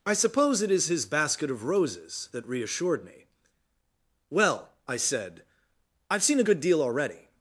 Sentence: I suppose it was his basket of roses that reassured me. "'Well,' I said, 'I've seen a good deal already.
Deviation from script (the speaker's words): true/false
true